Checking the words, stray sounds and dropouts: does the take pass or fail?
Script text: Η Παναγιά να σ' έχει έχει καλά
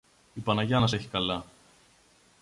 fail